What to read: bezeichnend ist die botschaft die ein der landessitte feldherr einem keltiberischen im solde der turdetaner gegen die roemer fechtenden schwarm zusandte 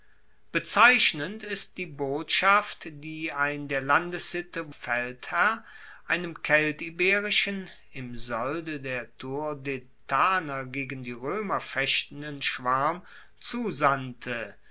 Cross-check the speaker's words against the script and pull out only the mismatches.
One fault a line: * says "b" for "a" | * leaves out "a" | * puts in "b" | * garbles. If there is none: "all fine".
all fine